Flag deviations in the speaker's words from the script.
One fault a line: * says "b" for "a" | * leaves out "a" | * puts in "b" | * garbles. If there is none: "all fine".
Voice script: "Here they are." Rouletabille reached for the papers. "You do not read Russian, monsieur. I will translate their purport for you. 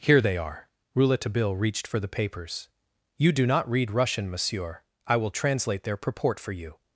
all fine